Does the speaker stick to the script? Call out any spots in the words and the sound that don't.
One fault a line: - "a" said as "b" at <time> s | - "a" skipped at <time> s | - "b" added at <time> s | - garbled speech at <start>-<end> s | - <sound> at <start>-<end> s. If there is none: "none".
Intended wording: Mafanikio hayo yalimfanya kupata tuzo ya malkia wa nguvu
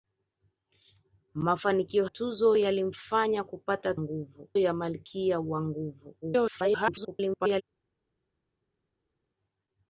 - "hayo" said as "tuzo" at 2.0 s
- "tuzo" said as "nguvu" at 3.9 s
- garbled speech at 6.2-7.6 s